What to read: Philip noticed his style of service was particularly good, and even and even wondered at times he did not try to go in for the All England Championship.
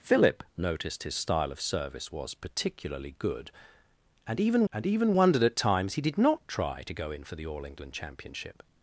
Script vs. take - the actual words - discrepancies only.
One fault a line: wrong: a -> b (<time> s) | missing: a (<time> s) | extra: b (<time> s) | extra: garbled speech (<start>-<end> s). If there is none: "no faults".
no faults